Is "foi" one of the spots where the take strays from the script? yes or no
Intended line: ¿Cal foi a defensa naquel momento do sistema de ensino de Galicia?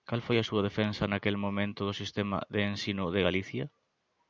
no